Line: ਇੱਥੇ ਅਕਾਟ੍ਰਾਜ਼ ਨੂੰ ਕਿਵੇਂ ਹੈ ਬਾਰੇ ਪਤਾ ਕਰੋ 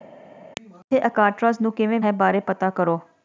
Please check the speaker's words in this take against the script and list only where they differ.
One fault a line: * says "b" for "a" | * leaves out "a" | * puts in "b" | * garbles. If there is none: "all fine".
all fine